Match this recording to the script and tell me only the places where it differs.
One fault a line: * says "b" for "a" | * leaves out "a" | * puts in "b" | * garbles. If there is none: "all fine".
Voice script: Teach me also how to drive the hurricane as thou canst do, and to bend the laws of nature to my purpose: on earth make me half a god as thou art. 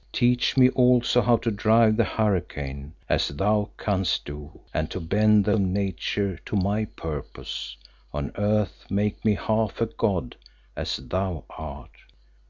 * leaves out "laws"